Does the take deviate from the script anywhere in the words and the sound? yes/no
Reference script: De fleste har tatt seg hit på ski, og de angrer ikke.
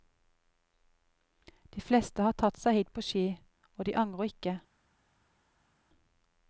no